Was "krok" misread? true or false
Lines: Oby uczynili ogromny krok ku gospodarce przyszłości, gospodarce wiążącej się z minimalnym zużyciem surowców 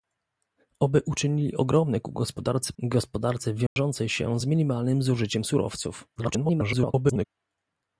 true